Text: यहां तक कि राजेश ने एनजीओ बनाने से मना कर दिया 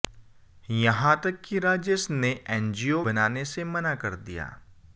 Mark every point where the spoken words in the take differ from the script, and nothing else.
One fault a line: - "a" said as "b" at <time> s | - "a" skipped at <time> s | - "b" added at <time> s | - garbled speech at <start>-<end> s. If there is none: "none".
none